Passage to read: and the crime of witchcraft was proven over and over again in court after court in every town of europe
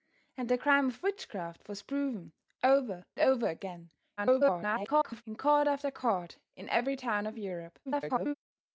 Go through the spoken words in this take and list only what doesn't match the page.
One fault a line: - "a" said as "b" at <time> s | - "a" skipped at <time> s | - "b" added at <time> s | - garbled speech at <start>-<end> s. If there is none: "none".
- "and" skipped at 3.0 s
- garbled speech at 4.2-5.2 s
- garbled speech at 7.9-8.3 s